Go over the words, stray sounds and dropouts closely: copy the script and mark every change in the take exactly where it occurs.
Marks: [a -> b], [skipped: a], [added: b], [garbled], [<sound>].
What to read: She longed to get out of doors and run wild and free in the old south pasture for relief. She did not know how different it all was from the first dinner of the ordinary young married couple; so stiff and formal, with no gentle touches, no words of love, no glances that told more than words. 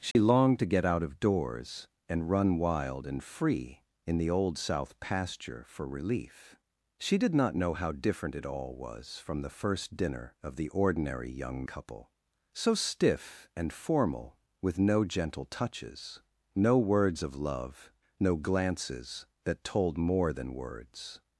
She [dropout] longed to get out of doors and run wild and free in the old south pasture for relief. She did not know how different it all was from the first dinner of the ordinary young [skipped: married] couple; so stiff and formal, with no gentle touches, no words of love, no glances that told more than words.